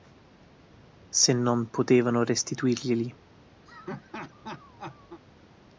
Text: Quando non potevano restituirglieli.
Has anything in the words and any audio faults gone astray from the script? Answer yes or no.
yes